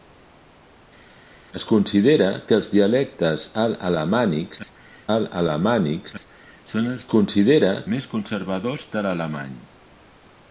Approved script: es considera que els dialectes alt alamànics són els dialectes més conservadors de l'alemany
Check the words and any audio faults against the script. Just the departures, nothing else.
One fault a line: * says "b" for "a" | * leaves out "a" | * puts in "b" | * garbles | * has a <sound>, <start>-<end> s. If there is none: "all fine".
* puts in "alt alamànics"
* says "considera" for "dialectes"